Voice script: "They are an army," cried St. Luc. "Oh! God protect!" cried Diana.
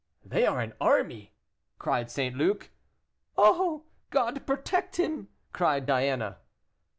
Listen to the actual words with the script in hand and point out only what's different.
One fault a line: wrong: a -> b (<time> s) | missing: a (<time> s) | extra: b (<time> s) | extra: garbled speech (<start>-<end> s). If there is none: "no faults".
extra: him (4.9 s)